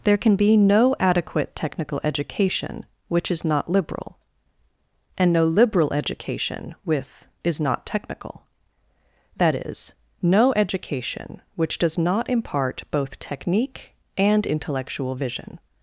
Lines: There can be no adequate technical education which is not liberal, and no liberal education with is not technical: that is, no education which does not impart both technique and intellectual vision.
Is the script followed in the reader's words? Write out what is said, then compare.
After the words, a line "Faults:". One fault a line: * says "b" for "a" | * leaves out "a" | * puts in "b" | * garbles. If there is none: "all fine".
There can be no adequate technical education which is not liberal, and no liberal education with is not technical: that is, no education which does not impart both technique and intellectual vision.
Faults:
all fine